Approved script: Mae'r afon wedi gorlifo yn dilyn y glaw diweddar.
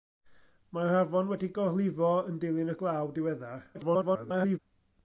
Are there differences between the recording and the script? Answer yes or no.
yes